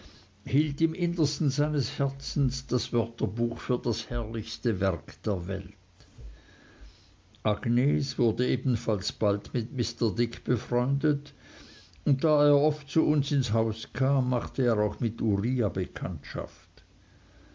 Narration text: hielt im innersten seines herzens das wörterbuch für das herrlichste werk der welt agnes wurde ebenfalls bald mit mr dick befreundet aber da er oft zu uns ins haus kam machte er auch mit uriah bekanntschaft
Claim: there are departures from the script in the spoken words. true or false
true